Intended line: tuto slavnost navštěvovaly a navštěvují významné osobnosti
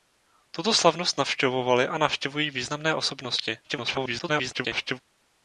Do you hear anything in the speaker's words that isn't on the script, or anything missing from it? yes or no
yes